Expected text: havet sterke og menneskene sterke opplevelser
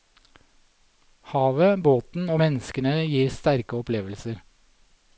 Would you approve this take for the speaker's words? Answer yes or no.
no